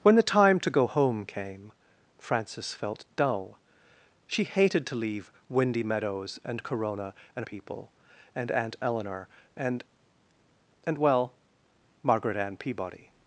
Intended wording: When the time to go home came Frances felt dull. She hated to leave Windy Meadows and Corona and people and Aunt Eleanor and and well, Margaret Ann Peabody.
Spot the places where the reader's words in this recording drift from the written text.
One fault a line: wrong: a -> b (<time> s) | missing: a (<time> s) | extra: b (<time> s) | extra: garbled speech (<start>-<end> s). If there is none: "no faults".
no faults